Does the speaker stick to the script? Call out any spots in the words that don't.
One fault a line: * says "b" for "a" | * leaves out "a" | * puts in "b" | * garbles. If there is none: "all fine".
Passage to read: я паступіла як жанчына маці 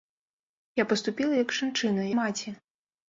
all fine